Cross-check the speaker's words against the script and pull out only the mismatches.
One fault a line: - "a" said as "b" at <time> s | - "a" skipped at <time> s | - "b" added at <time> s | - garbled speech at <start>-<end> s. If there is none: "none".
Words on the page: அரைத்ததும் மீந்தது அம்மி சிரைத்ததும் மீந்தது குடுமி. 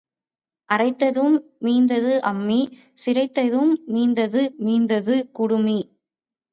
- "மீந்தது" added at 4.6 s